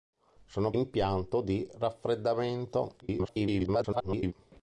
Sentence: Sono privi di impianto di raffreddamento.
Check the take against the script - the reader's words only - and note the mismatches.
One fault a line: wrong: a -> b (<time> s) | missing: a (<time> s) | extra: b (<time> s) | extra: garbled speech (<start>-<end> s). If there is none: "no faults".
missing: privi di (0.7 s)
extra: garbled speech (3.0-4.3 s)